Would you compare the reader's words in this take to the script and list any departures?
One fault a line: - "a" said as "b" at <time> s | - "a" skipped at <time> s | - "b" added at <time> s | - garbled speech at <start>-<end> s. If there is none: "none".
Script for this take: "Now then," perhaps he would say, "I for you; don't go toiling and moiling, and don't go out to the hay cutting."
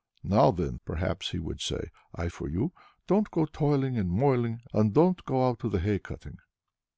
none